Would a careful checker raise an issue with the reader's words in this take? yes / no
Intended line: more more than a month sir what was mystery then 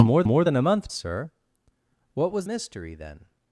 no